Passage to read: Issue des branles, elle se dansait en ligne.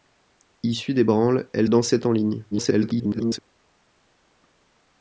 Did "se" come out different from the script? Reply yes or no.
yes